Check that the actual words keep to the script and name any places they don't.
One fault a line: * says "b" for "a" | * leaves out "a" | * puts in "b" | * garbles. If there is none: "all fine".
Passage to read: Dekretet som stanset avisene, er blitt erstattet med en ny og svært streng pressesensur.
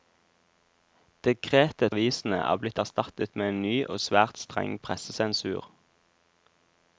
* leaves out "som stanset"